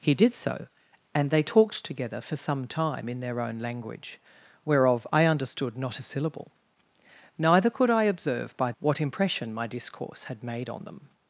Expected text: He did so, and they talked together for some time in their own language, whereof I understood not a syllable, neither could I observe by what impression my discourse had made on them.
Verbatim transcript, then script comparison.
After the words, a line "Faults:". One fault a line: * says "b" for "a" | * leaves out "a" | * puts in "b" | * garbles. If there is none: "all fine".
He did so, and they talked together for some time in their own language, whereof I understood not a syllable, neither could I observe by what impression my discourse had made on them.
Faults:
all fine